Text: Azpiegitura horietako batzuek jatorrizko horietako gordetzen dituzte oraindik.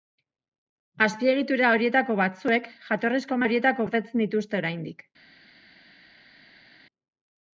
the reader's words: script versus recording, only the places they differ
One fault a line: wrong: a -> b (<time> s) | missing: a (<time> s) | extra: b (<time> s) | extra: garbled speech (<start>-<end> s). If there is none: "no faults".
no faults